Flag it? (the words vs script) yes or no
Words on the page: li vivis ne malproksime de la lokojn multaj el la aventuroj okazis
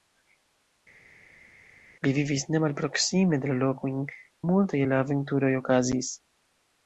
no